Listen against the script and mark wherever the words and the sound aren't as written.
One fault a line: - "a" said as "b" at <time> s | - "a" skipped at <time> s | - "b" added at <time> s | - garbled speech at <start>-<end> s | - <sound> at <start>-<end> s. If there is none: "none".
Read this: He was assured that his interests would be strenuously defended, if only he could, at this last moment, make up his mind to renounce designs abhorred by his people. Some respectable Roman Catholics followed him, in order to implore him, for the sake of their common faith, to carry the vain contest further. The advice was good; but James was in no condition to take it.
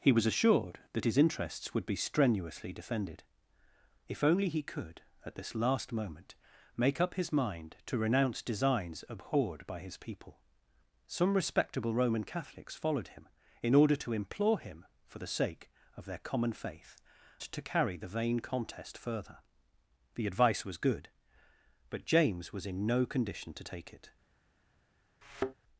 - thud at 25.2-25.5 s